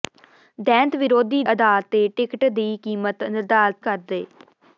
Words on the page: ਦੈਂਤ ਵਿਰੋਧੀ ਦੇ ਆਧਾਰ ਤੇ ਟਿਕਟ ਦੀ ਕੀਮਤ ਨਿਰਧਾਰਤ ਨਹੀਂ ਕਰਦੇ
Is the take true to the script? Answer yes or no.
no